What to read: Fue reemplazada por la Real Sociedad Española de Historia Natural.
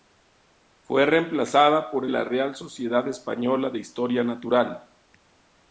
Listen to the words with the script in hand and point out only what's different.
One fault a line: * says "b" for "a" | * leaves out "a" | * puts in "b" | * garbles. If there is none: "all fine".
all fine